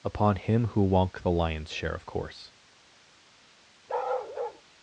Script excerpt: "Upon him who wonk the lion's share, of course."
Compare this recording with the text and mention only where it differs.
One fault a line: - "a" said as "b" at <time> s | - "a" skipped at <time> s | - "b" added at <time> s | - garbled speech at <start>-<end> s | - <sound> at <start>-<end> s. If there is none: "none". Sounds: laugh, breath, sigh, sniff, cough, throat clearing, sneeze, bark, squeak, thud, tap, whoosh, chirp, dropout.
- bark at 3.9-4.6 s